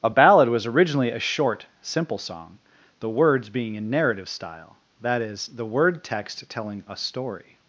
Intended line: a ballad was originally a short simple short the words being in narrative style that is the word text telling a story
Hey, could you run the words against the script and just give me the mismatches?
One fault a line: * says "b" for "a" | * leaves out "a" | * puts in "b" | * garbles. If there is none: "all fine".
* says "song" for "short"